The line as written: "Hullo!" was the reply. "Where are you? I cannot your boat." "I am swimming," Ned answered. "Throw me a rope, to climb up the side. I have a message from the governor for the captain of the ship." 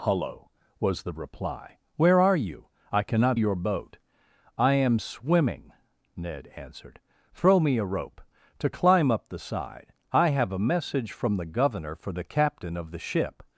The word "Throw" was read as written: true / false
true